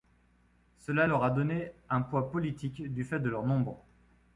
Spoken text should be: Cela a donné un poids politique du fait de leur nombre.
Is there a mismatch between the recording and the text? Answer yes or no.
yes